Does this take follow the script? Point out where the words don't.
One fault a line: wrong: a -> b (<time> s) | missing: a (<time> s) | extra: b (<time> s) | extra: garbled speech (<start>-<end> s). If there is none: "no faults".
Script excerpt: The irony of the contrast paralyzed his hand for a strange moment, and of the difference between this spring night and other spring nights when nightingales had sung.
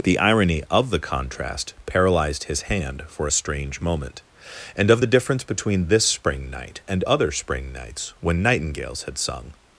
no faults